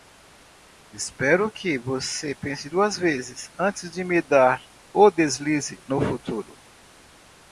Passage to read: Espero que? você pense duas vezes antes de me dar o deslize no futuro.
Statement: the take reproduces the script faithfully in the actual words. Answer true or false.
true